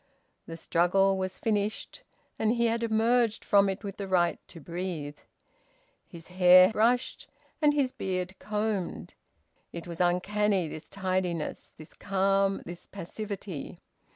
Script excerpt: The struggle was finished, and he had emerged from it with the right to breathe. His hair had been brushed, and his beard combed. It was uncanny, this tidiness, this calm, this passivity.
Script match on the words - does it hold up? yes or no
no